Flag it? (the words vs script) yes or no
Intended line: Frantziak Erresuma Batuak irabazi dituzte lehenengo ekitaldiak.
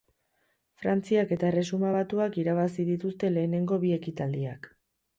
yes